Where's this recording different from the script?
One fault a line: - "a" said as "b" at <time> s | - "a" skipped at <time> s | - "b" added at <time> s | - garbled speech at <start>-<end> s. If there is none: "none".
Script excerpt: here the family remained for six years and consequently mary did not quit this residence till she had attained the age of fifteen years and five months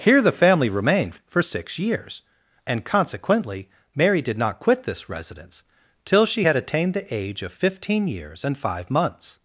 none